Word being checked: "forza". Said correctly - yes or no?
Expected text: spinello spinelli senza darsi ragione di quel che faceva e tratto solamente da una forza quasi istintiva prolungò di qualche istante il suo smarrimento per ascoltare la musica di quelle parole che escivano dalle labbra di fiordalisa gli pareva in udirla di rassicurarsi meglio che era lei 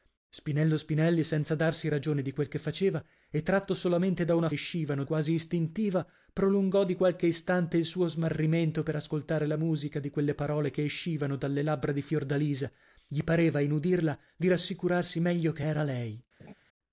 no